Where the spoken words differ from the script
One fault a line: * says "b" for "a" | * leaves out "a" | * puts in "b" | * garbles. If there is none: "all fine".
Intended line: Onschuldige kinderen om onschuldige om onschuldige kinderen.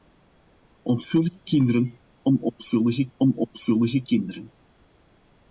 all fine